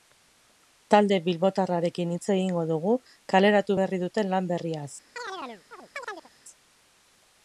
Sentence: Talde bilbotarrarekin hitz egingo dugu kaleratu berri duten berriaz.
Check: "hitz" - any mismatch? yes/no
no